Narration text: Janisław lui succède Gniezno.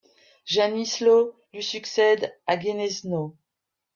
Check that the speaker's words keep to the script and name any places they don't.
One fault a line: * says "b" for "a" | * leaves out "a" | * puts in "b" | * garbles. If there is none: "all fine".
* puts in "à"